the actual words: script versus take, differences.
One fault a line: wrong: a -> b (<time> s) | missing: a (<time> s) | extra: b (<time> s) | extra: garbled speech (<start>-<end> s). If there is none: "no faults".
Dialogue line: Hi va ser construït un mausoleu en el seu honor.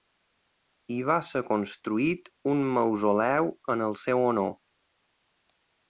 no faults